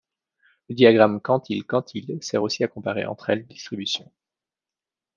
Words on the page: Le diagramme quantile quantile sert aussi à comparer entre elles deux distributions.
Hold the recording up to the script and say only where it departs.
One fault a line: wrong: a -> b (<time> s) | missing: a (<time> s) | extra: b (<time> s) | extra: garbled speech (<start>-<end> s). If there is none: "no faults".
missing: deux (3.5 s)